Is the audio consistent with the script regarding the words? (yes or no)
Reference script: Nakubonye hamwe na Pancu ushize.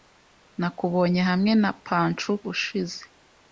yes